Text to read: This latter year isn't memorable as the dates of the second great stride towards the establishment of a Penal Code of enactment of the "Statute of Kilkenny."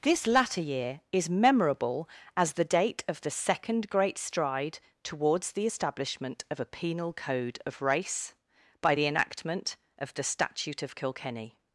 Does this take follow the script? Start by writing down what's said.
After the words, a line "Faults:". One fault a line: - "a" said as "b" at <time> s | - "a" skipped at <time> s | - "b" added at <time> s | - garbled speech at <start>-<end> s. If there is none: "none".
This latter year is memorable as the date of the second great stride towards the establishment of a Penal Code of race, by the enactment of the "Statute of Kilkenny."
Faults:
- "isn't" said as "is" at 1.1 s
- "dates" said as "date" at 2.6 s
- "race by the" added at 7.8 s